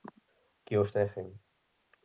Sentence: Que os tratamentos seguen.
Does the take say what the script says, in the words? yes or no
no